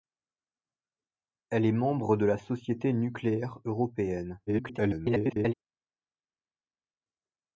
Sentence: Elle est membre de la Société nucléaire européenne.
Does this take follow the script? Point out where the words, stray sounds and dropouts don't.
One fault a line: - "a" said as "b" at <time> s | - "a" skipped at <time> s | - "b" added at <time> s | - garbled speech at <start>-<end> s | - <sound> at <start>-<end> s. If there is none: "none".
- garbled speech at 4.5-5.5 s